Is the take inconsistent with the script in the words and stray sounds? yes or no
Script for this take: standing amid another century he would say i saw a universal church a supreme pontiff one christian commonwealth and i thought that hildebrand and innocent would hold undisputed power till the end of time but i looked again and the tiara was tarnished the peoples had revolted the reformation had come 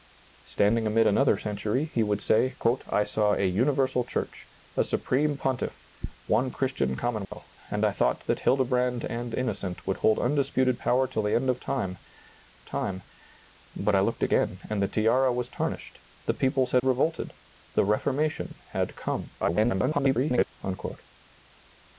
yes